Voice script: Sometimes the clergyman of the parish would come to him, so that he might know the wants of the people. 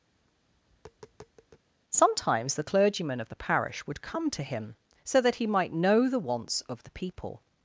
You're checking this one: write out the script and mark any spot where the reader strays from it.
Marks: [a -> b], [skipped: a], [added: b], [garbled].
Sometimes the clergyman of the parish would come to him, so that he might know the wants of the people.